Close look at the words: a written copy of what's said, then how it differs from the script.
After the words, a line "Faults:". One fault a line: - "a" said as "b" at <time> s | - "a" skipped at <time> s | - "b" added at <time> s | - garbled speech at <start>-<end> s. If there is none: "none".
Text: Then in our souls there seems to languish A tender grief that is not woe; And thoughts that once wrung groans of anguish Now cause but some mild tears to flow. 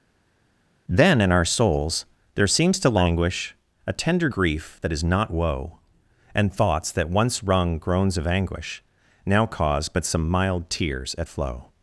Then in our souls there seems to languish A tender grief that is not woe; And thoughts that once wrung groans of anguish Now cause but some mild tears at flow.
Faults:
- "to" said as "at" at 11.2 s